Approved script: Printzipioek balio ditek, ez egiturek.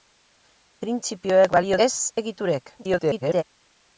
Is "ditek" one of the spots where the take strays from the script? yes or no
yes